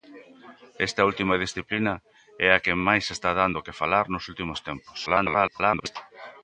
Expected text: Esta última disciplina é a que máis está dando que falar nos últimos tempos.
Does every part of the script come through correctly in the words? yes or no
no